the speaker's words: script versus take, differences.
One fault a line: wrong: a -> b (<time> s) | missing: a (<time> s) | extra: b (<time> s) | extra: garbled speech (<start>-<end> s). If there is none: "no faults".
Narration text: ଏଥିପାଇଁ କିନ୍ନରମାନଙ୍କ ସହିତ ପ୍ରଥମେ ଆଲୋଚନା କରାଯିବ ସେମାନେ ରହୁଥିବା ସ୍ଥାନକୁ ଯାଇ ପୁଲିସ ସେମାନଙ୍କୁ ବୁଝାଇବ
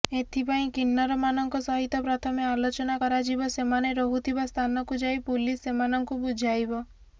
no faults